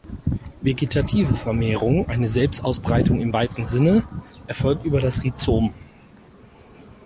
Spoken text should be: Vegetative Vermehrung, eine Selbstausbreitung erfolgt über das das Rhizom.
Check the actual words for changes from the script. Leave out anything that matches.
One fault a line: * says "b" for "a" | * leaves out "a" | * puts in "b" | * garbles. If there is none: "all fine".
* puts in "im weiten Sinne"
* leaves out "das"